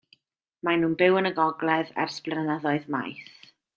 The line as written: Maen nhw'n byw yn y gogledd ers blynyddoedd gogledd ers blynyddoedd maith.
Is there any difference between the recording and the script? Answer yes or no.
yes